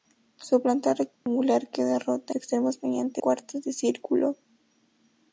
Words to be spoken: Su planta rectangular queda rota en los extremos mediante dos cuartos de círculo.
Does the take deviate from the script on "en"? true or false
true